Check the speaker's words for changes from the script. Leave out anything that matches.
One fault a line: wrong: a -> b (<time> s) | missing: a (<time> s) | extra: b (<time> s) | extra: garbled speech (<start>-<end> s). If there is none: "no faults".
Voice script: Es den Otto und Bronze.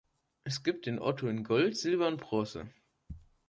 extra: gibt (0.6 s)
extra: in Gold Silber (1.3 s)